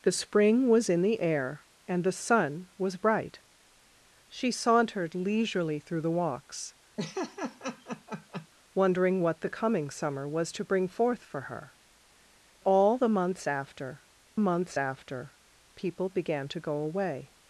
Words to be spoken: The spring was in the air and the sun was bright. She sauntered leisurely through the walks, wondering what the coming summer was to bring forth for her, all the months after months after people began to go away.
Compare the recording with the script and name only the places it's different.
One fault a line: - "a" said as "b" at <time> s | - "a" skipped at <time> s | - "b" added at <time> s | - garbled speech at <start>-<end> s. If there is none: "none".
none